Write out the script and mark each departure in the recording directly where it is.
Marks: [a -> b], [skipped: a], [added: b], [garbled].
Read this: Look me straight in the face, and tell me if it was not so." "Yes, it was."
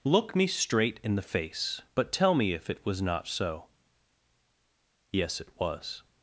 Look me straight in the face, [and -> but] tell me if it was not so." "Yes, it was."